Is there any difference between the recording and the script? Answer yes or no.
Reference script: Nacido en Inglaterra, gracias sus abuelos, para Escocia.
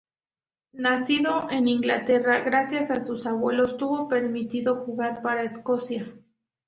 yes